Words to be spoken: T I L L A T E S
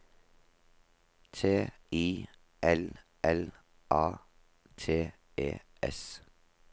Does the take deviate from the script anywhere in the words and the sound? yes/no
no